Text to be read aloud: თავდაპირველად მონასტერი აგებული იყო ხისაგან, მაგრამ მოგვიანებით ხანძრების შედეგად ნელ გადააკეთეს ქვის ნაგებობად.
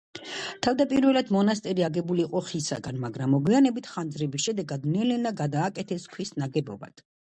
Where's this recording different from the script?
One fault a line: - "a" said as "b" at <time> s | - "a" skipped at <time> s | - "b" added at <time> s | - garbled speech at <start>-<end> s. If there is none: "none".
- "ნელა" added at 5.2 s